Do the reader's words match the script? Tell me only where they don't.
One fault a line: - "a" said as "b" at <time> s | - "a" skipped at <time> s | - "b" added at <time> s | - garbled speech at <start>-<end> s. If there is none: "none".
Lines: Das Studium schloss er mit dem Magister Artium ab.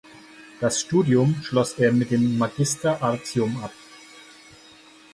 none